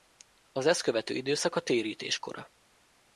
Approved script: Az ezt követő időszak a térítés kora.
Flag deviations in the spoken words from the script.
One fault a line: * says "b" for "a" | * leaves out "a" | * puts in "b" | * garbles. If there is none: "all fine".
all fine